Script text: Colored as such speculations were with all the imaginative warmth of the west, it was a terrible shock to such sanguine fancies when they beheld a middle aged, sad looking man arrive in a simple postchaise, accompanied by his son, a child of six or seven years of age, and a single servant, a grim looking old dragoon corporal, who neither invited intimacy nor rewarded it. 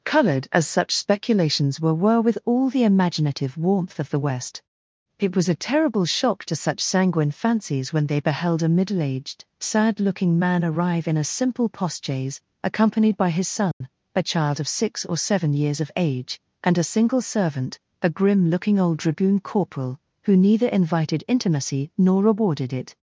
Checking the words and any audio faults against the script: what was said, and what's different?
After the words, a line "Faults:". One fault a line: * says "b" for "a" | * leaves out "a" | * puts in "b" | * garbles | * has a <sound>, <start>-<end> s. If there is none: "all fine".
Colored as such speculations were were with all the imaginative warmth of the west, it was a terrible shock to such sanguine fancies when they beheld a middle aged, sad looking man arrive in a simple postchaise, accompanied by his son, a child of six or seven years of age, and a single servant, a grim looking old dragoon corporal, who neither invited intimacy nor rewarded it.
Faults:
* puts in "were"
* has a dropout, 13.7-13.8 s